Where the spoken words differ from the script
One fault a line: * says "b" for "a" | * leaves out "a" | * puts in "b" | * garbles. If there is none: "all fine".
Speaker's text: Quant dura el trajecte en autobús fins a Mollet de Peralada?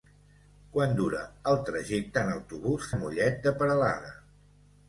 * leaves out "fins"